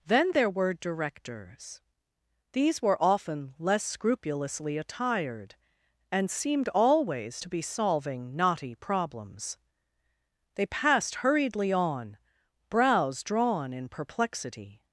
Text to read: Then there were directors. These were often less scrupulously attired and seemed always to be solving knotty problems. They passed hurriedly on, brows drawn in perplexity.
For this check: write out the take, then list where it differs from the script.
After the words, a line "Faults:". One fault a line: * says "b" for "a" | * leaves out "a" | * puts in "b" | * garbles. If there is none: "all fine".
Then there were directors. These were often less scrupulously attired and seemed always to be solving knotty problems. They passed hurriedly on, brows drawn in perplexity.
Faults:
all fine